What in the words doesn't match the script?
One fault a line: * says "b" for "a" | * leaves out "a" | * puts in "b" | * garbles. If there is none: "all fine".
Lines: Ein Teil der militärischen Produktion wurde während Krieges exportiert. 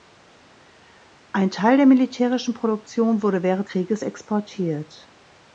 all fine